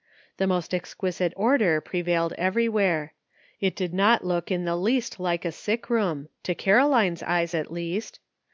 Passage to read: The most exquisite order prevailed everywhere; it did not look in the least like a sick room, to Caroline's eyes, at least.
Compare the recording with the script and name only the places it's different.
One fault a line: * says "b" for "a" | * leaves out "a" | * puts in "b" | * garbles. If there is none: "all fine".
all fine